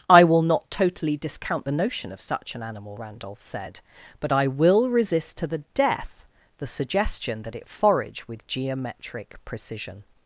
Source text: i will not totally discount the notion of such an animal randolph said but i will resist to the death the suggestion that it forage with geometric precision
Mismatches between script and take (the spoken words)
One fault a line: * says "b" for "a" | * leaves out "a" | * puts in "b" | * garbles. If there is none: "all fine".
all fine